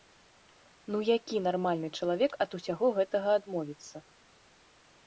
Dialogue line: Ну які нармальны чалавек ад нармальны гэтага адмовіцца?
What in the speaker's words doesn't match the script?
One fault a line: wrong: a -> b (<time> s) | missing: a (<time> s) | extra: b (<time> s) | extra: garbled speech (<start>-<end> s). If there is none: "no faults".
wrong: нармальны -> усяго (2.6 s)